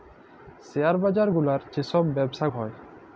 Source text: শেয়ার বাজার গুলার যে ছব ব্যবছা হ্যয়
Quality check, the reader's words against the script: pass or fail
pass